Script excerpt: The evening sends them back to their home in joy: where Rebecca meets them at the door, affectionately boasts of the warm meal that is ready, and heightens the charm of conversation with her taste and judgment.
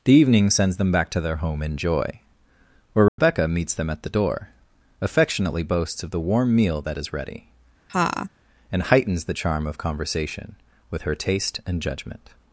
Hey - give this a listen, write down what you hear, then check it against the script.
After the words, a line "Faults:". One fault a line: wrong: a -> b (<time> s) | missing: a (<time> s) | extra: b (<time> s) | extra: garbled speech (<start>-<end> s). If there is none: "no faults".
The evening sends them back to their home in joy: where Rebecca meets them at the door, affectionately boasts of the warm meal that is ready, and heightens the charm of conversation with her taste and judgment.
Faults:
no faults